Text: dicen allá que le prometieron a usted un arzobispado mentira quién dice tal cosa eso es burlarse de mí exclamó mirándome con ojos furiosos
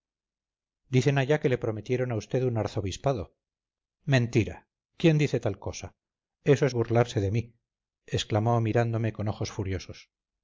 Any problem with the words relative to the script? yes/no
no